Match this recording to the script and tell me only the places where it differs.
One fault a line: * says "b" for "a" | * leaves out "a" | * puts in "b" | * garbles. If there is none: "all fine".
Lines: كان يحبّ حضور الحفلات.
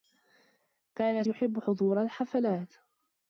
all fine